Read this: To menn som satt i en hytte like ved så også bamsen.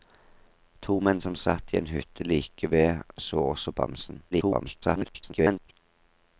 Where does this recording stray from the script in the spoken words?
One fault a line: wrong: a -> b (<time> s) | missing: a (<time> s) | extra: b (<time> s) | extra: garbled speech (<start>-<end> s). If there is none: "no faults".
extra: garbled speech (4.3-5.7 s)